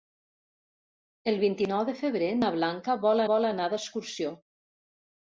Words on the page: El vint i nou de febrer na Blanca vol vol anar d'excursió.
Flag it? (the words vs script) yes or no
no